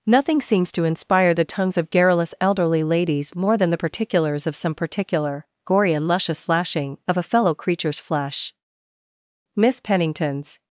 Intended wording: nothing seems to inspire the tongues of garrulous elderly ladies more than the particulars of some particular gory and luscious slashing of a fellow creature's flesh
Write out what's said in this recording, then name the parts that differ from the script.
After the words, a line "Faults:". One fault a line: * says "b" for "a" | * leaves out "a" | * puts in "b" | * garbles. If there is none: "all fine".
nothing seems to inspire the tongues of garrulous elderly ladies more than the particulars of some particular gory and luscious slashing of a fellow creature's flesh miss pennington's
Faults:
* puts in "miss pennington's"